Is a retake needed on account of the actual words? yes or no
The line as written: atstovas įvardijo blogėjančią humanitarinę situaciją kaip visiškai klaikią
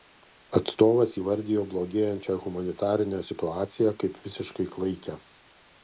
no